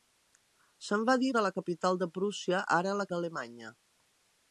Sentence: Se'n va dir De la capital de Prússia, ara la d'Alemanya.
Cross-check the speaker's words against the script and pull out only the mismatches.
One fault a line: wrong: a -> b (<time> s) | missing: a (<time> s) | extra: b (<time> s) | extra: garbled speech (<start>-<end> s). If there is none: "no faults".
no faults